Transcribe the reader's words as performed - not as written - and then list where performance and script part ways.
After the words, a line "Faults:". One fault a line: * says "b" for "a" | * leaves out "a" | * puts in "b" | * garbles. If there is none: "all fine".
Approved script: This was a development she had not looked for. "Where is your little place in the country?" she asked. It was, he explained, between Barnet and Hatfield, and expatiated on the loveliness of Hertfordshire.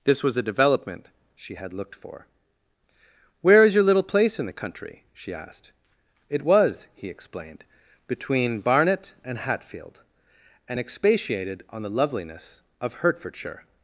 This was a development she had looked for. "Where is your little place in the country?" she asked. It was, he explained, between Barnet and Hatfield, and expatiated on the loveliness of Hertfordshire.
Faults:
* leaves out "not"